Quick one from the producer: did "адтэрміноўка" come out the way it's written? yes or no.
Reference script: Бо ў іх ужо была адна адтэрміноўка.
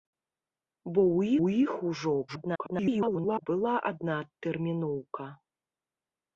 yes